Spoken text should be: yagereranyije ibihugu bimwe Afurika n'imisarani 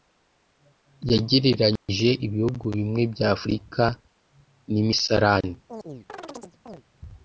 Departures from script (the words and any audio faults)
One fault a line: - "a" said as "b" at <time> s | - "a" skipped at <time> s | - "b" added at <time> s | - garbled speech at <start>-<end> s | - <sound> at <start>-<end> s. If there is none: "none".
- dropout at 1.8-1.9 s
- "bya" added at 3.1 s
- chirp at 5.7-6.8 s